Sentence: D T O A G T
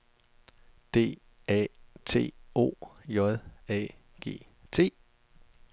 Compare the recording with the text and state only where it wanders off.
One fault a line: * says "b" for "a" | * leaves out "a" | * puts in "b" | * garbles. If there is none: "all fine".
* puts in "A"
* puts in "J"